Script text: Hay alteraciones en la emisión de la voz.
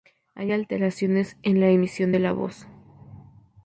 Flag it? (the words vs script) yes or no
no